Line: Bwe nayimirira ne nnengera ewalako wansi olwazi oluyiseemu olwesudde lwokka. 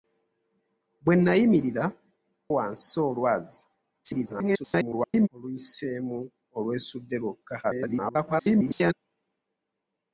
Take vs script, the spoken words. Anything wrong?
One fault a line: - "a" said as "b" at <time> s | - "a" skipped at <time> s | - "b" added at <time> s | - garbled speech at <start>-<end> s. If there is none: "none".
- "ne nnengera ewalako" skipped at 1.9 s
- garbled speech at 4.0-5.3 s
- garbled speech at 7.6-8.9 s